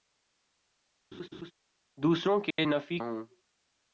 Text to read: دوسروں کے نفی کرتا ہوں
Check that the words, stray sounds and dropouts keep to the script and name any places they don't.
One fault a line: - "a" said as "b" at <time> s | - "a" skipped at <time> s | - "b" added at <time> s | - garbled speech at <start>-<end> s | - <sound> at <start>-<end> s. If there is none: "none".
- laugh at 1.1-1.5 s
- dropout at 2.5-2.6 s
- "کرتا" skipped at 3.0 s